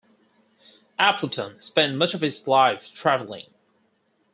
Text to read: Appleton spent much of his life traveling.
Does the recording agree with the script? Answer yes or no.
yes